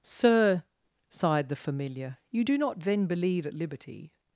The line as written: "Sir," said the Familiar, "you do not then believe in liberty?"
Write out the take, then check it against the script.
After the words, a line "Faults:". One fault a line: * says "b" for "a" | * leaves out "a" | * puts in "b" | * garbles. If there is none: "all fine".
"Sir," sighed the Familiar, "you do not then believe at liberty?"
Faults:
* says "sighed" for "said"
* says "at" for "in"